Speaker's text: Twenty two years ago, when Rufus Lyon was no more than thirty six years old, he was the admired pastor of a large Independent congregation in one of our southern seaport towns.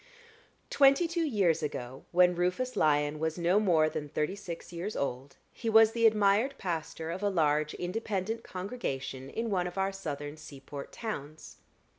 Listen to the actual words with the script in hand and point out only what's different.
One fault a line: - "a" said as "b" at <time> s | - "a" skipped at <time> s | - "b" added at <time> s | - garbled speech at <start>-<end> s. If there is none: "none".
none